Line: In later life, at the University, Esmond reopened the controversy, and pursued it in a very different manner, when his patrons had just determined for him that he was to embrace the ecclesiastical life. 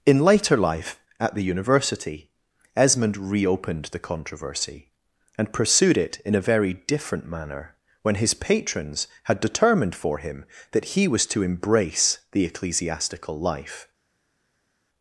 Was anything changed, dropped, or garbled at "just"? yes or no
yes